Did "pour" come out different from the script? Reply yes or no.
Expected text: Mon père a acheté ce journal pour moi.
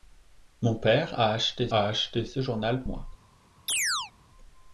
yes